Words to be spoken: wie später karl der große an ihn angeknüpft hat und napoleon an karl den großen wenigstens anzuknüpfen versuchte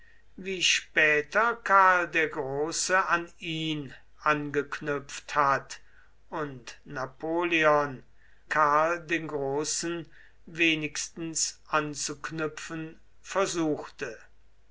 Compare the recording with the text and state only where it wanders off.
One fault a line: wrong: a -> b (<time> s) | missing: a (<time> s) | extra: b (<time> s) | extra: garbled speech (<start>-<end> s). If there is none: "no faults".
missing: an (8.0 s)